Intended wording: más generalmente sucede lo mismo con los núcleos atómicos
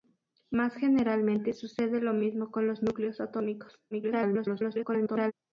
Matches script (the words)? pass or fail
fail